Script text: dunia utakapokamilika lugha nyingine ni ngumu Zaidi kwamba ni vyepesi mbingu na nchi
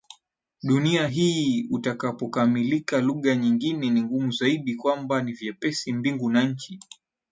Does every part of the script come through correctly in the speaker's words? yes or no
no